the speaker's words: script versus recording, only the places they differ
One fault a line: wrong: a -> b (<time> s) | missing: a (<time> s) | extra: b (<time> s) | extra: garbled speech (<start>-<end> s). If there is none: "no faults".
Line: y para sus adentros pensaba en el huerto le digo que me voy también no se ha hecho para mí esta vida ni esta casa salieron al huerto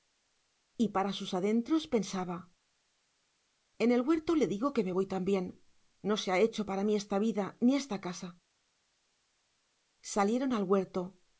no faults